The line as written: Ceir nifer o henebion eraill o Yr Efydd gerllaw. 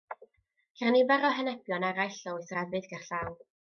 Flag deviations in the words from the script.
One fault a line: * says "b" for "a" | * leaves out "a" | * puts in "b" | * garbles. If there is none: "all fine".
* puts in "Oes"